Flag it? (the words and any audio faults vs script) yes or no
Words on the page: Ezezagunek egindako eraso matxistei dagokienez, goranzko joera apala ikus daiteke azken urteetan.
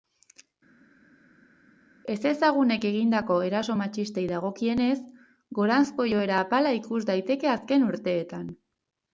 no